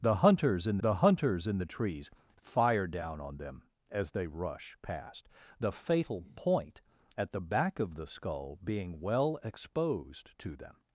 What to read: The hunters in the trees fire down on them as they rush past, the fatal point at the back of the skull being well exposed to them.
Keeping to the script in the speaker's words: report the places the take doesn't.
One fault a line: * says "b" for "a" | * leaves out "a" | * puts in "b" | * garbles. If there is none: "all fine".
* puts in "hunters in the"